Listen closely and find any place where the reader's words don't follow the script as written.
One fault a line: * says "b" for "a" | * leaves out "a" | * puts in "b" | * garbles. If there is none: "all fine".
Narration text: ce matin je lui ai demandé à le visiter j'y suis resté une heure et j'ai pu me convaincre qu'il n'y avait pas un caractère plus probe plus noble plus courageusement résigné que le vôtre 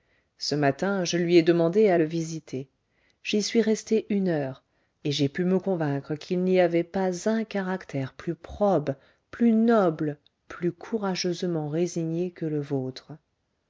all fine